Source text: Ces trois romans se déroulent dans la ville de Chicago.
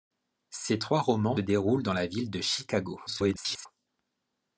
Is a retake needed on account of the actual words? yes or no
yes